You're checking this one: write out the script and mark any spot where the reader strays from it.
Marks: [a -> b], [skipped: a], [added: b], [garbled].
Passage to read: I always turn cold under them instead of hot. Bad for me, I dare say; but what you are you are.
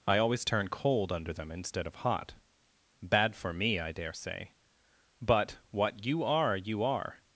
I always turn cold under them instead of hot. Bad for me, I dare say; but what you are you are.